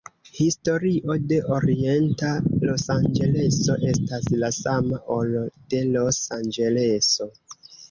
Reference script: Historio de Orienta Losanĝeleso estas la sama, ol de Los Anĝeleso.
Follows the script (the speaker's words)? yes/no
yes